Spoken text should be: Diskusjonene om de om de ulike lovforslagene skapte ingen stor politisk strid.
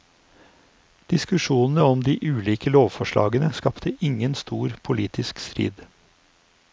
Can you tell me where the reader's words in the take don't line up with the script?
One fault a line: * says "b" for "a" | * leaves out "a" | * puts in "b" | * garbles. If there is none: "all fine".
* leaves out "om de"